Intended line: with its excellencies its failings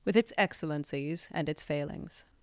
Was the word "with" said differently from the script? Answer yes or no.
no